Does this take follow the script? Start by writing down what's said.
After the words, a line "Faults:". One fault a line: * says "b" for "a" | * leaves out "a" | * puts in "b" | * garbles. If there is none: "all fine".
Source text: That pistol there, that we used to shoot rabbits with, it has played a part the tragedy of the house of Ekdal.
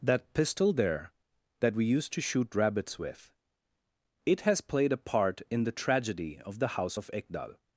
That pistol there, that we used to shoot rabbits with, it has played a part in the tragedy of the house of Ekdal.
Faults:
* puts in "in"